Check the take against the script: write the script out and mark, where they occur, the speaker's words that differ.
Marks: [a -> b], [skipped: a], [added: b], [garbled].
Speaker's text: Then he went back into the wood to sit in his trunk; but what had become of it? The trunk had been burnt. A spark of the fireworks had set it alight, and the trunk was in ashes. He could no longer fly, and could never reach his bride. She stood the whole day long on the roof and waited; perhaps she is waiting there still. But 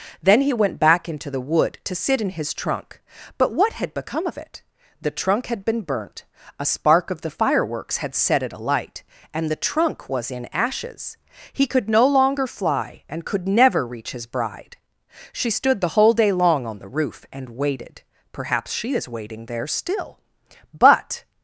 Then he went back into the wood to sit in his trunk; but what had become of it? The trunk had been burnt. A spark of the fireworks had set it alight, and the trunk was in ashes. He could no longer fly, and could never reach his bride. She stood the whole day long on the roof and waited; perhaps she is waiting there still. But